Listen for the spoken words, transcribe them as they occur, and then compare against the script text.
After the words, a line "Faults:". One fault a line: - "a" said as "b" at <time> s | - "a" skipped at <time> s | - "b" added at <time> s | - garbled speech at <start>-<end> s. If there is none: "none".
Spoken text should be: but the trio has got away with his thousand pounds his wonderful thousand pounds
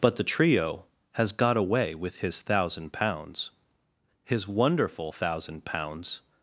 but the trio has got away with his thousand pounds his wonderful thousand pounds
Faults:
none